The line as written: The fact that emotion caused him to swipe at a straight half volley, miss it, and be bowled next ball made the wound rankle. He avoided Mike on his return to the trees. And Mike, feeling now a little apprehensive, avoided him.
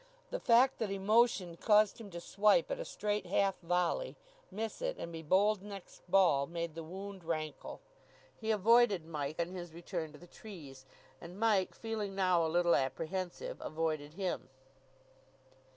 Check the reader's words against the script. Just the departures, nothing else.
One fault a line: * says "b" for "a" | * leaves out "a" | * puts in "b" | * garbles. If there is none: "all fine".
all fine